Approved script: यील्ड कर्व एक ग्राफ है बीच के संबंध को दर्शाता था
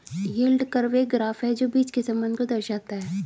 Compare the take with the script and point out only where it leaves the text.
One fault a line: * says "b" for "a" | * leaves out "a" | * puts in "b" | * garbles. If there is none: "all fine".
* puts in "जो"
* says "है" for "था"